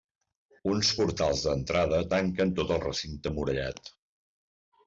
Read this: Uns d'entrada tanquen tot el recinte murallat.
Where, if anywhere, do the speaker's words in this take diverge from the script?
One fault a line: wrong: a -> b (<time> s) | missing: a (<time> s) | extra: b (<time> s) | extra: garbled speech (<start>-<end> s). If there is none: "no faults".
extra: portals (1.0 s)